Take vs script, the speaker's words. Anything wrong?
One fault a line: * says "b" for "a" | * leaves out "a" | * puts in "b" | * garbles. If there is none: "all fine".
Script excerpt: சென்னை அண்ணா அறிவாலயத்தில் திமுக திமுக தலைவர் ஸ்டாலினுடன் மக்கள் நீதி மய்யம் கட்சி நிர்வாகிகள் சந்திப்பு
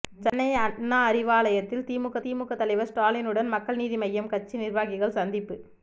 all fine